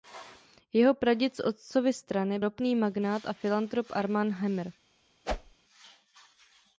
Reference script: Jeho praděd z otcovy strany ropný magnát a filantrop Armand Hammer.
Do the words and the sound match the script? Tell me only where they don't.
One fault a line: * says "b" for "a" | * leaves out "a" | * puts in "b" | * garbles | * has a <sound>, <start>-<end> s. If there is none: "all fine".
* has a whoosh, 5.2-5.6 s